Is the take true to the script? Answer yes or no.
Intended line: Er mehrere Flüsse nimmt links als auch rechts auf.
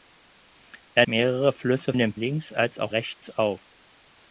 yes